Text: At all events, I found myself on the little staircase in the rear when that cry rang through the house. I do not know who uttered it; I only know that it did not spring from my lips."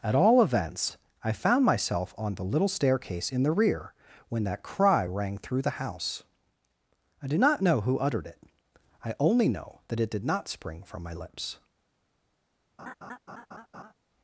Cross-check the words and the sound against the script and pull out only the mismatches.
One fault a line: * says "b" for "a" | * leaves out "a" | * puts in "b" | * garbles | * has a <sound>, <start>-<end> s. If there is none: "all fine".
* has a laugh, 12.8-13.9 s